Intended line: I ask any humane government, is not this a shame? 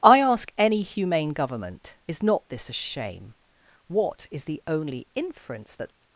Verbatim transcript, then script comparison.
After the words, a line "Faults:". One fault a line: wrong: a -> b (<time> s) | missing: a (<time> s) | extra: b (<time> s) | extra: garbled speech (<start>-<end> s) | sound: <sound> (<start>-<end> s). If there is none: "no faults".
I ask any humane government, is not this a shame? What is the only inference that
Faults:
extra: What is the only inference that (3.9 s)